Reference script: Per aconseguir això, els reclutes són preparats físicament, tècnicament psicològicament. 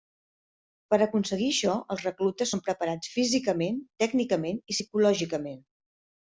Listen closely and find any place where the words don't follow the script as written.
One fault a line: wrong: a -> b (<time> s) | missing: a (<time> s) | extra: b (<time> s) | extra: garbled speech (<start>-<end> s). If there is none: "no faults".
extra: i (4.6 s)